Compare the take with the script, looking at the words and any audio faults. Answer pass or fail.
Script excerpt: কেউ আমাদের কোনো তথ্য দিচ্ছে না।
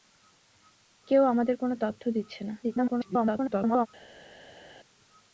fail